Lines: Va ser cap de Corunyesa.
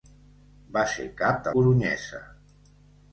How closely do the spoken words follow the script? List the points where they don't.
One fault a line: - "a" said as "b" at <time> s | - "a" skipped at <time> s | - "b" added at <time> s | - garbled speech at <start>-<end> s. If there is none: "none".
none